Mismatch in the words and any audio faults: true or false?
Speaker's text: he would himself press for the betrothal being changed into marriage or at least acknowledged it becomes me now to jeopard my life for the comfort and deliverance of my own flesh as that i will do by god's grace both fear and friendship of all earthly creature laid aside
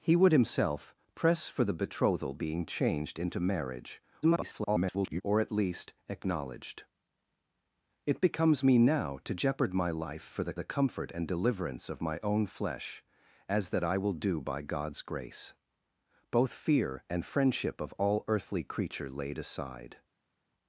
true